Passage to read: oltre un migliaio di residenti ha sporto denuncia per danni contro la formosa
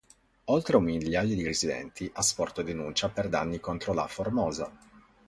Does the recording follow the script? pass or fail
pass